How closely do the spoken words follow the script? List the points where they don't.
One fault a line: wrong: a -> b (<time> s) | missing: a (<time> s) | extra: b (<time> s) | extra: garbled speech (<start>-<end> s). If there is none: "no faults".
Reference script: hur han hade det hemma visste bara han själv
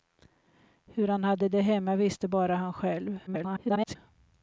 extra: garbled speech (3.3-4.0 s)